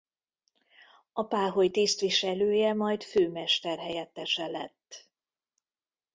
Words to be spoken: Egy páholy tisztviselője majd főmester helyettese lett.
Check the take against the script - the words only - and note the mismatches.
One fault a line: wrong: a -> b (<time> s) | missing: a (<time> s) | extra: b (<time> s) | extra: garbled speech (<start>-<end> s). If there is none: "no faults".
wrong: Egy -> A (1.1 s)